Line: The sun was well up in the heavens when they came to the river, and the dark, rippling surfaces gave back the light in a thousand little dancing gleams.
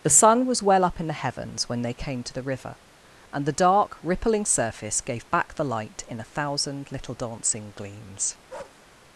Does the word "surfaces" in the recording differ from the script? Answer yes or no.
yes